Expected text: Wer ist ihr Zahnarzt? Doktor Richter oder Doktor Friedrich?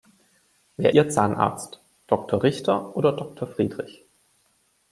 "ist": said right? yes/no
no